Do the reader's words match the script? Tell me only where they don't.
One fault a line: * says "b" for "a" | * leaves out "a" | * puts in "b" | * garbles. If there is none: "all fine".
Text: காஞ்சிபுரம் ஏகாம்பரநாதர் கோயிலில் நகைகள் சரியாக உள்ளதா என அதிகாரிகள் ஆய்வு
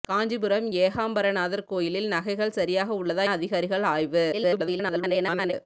* leaves out "என"
* garbles